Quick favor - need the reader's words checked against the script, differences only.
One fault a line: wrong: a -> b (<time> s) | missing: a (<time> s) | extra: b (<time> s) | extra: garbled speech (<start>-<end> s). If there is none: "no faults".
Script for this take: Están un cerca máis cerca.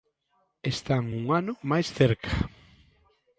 wrong: cerca -> ano (1.4 s)